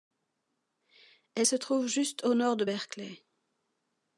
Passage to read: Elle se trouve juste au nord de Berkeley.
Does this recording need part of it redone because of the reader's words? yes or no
no